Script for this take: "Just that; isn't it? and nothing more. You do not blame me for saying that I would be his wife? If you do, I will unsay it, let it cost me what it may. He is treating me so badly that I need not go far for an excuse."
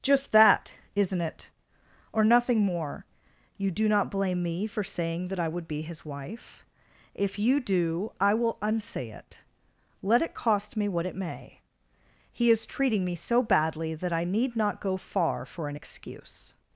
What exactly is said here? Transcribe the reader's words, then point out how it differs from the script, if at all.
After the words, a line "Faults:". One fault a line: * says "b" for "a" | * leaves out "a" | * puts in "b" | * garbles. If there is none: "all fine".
"Just that; isn't it? or nothing more. You do not blame me for saying that I would be his wife? If you do, I will unsay it, let it cost me what it may. He is treating me so badly that I need not go far for an excuse."
Faults:
* says "or" for "and"